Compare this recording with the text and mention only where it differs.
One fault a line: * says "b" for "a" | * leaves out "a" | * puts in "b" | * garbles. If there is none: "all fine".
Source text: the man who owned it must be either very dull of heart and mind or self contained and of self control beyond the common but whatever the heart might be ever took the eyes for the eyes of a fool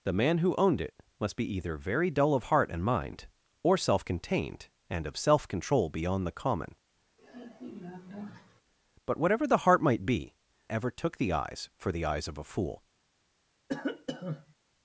all fine